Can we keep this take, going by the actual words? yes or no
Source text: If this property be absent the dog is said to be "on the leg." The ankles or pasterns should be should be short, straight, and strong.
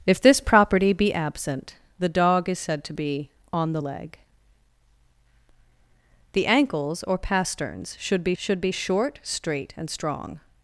yes